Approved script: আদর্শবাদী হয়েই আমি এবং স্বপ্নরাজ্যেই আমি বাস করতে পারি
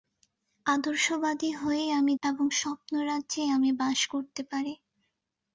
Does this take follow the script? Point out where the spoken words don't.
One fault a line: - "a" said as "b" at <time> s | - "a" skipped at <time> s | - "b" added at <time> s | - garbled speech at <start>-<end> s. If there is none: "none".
none